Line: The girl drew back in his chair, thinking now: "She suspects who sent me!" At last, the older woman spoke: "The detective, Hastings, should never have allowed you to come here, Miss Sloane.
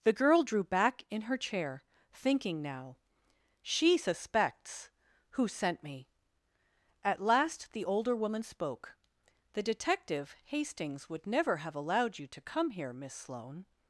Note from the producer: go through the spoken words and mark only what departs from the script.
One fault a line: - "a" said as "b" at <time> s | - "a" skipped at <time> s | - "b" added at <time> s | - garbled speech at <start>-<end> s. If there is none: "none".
- "his" said as "her" at 1.2 s
- "should" said as "would" at 11.1 s